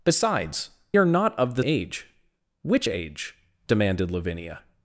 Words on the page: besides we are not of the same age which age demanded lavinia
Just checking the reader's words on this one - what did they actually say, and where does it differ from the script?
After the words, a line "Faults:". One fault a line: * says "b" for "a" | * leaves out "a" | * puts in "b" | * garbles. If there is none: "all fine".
besides are not of the age which age demanded lavinia
Faults:
* leaves out "we"
* leaves out "same"